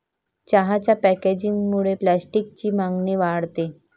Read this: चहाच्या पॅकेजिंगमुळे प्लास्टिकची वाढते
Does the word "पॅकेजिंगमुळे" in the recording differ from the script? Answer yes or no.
no